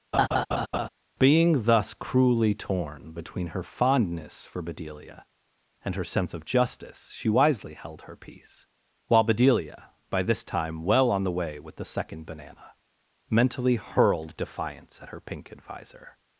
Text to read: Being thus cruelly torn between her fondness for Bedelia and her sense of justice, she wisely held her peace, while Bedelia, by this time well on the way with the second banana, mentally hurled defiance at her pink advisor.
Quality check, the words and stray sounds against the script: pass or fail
fail